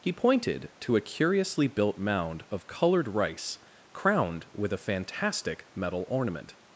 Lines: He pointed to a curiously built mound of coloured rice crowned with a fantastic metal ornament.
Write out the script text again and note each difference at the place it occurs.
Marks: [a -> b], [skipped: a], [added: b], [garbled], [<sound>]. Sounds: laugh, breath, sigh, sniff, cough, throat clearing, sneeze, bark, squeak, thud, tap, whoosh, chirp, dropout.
He pointed to a curiously built mound of coloured rice crowned with a fantastic metal ornament.